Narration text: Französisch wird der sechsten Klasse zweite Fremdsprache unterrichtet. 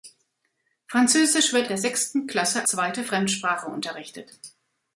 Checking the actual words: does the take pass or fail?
pass